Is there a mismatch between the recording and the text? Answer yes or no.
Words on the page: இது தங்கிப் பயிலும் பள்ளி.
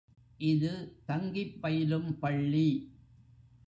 no